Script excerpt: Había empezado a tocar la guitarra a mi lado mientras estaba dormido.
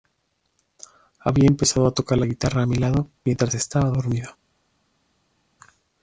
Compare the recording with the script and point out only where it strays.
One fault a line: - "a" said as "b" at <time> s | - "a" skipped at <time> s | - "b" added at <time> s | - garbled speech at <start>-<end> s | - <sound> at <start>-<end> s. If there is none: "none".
none